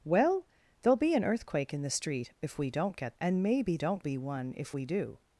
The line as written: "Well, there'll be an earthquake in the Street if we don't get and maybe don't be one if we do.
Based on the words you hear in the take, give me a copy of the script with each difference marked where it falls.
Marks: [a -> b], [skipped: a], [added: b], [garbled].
"Well, there'll be an earthquake in the Street if we don't get and maybe don't be one if we do.